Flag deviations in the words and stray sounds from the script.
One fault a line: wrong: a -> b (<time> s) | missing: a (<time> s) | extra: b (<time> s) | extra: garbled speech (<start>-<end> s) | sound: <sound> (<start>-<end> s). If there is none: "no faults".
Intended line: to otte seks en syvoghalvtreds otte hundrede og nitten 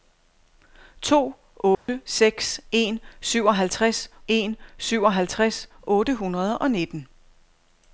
sound: dropout (1.7-1.9 s)
extra: en syvoghalvtreds (4.3 s)